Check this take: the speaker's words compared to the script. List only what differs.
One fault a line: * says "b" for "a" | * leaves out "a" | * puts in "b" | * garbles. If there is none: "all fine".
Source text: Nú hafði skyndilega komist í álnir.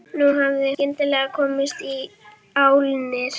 all fine